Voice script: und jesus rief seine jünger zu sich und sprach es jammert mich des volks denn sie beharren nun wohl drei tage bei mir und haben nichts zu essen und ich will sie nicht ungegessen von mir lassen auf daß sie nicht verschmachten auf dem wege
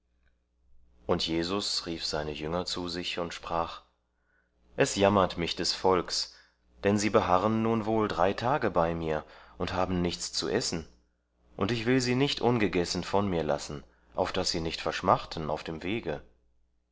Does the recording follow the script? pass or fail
pass